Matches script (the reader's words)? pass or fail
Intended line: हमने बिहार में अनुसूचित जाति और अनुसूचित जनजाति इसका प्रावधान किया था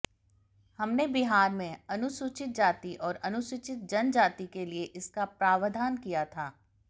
fail